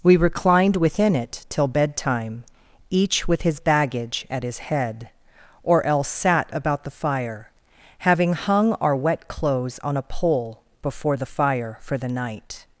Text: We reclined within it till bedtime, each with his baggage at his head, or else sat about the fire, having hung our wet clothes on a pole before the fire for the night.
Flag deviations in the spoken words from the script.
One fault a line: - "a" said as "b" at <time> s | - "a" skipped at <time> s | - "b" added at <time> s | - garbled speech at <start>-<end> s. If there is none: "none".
none